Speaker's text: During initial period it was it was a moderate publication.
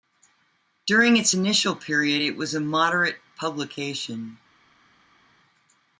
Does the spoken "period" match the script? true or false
true